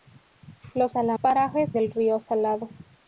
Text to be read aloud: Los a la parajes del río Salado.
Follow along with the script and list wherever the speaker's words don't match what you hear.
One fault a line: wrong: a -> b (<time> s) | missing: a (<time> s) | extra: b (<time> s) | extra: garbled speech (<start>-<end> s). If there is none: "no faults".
no faults